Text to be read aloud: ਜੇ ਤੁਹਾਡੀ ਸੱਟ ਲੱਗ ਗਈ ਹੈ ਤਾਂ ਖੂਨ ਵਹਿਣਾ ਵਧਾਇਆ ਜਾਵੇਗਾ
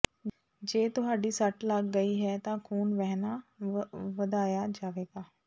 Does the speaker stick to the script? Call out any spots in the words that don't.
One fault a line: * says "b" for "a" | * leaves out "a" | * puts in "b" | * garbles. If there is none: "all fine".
all fine